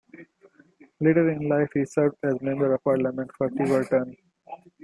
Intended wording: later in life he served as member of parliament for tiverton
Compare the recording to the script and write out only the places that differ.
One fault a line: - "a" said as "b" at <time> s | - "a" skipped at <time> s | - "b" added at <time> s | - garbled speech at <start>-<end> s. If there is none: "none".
none